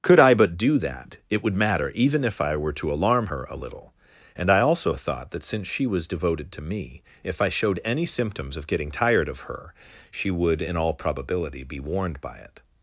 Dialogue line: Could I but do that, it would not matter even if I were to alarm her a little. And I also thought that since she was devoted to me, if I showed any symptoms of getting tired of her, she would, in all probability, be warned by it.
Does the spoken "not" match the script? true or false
false